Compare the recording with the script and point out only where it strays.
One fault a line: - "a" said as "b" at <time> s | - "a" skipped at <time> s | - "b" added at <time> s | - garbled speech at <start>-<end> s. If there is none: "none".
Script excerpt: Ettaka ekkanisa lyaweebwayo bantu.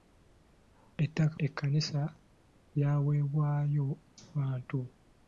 none